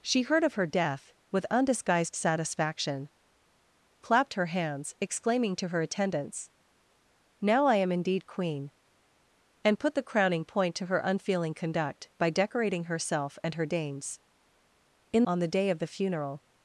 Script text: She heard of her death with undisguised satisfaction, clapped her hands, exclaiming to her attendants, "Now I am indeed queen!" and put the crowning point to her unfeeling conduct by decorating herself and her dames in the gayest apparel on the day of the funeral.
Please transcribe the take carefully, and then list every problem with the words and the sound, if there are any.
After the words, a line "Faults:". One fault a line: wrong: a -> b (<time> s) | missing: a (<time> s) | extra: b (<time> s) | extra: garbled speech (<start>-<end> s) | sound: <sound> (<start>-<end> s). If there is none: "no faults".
She heard of her death with undisguised satisfaction, clapped her hands, exclaiming to her attendants, "Now I am indeed queen!" and put the crowning point to her unfeeling conduct by decorating herself and her dames in on the day of the funeral.
Faults:
missing: the gayest apparel (15.2 s)